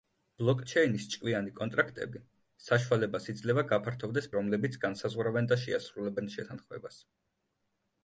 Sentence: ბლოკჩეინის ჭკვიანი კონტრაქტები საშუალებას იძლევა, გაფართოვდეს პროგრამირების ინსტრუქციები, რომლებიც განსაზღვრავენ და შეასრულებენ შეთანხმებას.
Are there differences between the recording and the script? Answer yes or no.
yes